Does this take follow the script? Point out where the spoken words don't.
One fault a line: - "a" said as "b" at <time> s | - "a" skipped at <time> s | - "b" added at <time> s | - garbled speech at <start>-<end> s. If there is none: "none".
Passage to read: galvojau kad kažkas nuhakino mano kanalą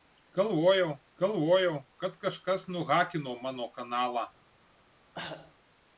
- "galvojau" added at 1.2 s